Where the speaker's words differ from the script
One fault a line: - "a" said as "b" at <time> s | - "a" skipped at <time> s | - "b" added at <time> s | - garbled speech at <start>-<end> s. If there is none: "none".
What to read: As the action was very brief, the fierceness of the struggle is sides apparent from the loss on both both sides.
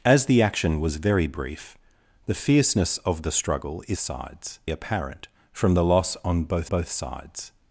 none